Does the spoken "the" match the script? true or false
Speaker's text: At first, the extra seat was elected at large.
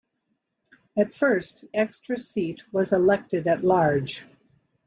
false